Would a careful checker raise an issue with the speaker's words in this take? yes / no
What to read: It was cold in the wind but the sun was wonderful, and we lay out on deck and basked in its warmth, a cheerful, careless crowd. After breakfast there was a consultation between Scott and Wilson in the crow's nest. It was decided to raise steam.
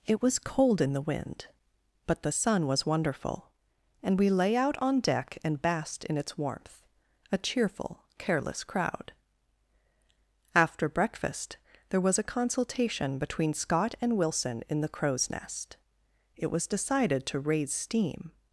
no